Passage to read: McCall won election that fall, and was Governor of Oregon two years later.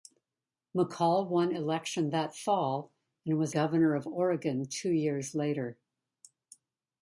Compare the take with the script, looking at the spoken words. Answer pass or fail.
pass